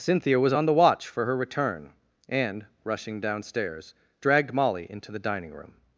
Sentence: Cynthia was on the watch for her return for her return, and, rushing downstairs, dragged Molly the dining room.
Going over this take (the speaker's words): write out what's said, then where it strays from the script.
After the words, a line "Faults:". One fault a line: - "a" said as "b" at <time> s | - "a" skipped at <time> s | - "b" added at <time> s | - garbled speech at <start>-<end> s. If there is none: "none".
Cynthia was on the watch for her return, and, rushing downstairs, dragged Molly into the dining room.
Faults:
- "for her return" skipped at 1.9 s
- "into" added at 4.9 s